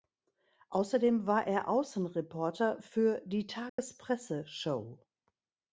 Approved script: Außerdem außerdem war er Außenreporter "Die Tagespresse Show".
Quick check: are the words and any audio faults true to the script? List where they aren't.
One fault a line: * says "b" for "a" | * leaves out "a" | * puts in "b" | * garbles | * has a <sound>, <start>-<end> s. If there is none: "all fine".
* leaves out "außerdem"
* puts in "für"
* has a dropout, 3.7-3.8 s